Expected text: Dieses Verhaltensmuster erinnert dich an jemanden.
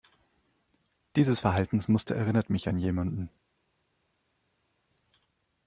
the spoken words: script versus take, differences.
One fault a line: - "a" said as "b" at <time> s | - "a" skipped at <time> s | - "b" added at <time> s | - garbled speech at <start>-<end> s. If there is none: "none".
- "dich" said as "mich" at 2.5 s